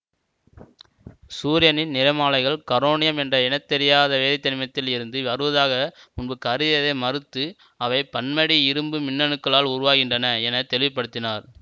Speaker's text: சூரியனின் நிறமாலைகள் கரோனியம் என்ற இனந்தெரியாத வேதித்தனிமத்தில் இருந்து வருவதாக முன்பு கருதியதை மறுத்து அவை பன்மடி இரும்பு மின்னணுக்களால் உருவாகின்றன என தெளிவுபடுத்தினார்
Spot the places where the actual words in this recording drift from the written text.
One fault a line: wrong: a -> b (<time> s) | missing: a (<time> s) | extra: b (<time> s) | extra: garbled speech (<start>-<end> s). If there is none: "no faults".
no faults